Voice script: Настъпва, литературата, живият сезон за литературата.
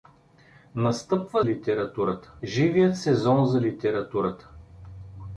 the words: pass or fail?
pass